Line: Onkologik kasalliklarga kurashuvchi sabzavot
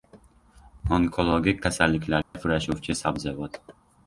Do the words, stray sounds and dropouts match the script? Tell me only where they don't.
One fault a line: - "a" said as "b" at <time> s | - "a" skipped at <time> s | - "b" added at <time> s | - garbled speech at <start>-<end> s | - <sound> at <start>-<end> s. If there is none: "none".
- dropout at 2.2-2.3 s